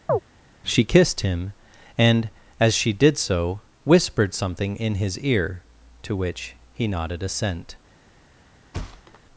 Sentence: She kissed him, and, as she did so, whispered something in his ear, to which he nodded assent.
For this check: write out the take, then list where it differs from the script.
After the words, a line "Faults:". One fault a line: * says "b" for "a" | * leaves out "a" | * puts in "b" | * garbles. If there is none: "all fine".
She kissed him, and, as she did so, whispered something in his ear, to which he nodded assent.
Faults:
all fine